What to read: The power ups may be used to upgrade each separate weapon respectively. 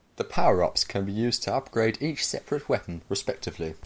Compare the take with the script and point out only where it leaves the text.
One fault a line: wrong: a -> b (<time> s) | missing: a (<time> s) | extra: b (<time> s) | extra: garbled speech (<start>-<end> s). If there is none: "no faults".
wrong: may -> can (0.8 s)